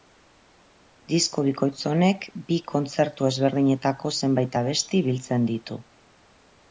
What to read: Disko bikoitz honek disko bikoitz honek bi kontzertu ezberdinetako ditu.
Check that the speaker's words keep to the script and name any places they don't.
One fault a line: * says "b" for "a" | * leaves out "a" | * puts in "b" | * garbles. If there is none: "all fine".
* says "bi kontzertu ezberdinetako zenbait abesti biltzen" for "disko bikoitz honek bi kontzertu ezberdinetako"